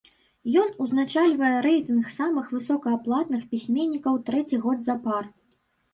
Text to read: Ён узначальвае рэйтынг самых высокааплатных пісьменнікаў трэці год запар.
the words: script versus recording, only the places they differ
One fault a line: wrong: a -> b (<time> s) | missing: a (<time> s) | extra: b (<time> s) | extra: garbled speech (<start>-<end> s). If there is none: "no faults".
no faults